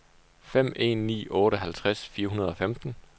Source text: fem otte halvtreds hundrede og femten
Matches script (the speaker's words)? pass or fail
fail